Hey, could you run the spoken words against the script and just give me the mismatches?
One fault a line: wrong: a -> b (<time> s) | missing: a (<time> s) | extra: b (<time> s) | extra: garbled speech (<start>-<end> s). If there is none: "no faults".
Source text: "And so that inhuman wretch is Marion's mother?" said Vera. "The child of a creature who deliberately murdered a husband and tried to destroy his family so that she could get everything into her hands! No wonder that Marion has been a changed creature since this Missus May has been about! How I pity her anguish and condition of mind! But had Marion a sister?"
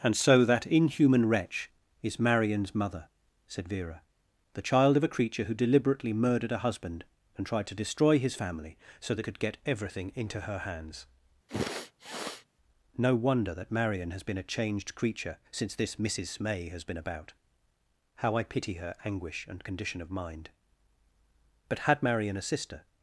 missing: she (9.3 s)